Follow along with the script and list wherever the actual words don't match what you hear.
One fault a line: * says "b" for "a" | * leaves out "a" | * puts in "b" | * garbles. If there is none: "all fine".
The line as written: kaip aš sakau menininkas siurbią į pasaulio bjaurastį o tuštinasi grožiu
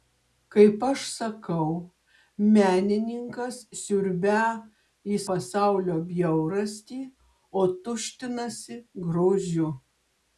all fine